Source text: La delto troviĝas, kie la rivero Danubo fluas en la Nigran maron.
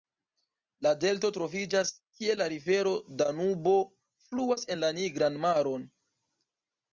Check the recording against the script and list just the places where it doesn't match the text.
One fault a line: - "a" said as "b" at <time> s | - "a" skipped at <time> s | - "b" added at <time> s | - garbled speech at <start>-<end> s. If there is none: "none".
none